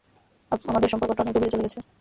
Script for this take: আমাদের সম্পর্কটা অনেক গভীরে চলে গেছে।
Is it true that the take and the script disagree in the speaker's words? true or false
false